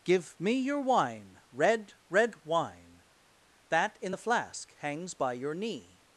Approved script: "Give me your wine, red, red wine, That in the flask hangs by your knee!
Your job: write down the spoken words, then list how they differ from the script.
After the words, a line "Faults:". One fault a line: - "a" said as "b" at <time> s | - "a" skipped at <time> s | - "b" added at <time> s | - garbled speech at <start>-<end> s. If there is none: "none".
"Give me your wine, red, red wine, That in the flask hangs by your knee!
Faults:
none